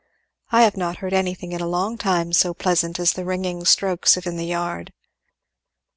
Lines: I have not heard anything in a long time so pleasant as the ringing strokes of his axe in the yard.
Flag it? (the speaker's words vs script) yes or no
yes